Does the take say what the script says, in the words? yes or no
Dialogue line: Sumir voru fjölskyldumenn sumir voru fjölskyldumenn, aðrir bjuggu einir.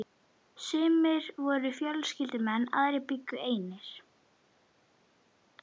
no